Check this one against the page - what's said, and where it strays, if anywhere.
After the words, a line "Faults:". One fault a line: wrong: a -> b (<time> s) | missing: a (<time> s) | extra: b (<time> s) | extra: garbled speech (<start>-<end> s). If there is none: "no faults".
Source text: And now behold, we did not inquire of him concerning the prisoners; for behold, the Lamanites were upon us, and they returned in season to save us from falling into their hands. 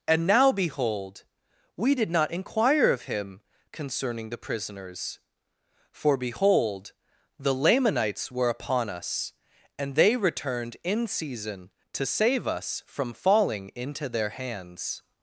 And now behold, we did not inquire of him concerning the prisoners; for behold, the Lamanites were upon us, and they returned in season to save us from falling into their hands.
Faults:
no faults